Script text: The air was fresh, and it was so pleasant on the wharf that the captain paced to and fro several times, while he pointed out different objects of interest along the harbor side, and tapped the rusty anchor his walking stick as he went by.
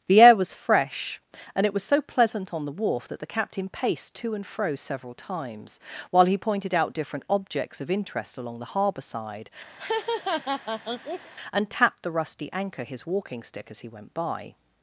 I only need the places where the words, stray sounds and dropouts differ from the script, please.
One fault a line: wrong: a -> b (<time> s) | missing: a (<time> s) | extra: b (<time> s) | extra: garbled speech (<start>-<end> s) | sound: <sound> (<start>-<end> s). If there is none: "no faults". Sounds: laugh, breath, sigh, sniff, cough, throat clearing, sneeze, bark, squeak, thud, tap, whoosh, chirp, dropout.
sound: laugh (9.8-11.3 s)